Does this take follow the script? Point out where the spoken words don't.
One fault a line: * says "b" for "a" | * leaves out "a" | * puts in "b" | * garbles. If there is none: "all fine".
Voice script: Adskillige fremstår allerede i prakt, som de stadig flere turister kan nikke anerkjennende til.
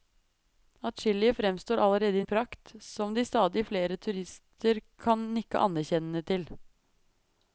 all fine